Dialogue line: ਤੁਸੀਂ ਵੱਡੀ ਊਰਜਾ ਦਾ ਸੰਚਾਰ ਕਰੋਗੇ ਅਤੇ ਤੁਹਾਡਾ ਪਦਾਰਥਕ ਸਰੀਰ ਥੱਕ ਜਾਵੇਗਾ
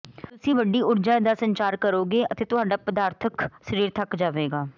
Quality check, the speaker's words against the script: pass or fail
pass